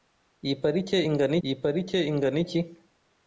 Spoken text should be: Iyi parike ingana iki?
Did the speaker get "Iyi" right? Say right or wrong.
right